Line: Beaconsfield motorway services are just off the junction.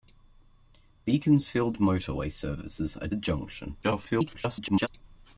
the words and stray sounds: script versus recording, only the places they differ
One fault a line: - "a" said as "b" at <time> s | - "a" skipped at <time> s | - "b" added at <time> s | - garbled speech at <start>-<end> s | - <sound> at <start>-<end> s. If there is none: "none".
- "just off" skipped at 3.1 s
- garbled speech at 3.8-4.9 s